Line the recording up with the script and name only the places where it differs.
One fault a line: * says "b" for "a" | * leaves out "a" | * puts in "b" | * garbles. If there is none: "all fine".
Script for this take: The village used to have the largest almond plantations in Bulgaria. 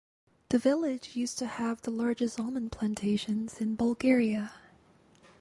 all fine